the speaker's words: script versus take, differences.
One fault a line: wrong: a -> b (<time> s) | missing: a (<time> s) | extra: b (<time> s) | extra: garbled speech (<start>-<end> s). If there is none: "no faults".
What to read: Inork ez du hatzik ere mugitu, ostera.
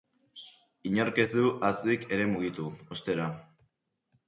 no faults